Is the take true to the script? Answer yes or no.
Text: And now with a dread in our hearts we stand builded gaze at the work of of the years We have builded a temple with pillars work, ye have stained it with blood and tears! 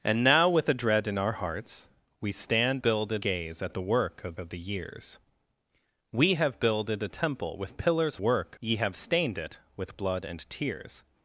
yes